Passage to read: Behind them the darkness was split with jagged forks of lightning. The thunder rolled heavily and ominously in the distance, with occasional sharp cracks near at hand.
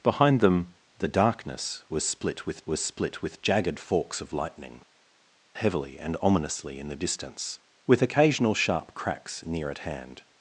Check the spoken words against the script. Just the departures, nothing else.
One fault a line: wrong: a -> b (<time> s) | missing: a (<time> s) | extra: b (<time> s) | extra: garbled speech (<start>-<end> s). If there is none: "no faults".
extra: was split with (2.7 s)
missing: The thunder rolled (4.8 s)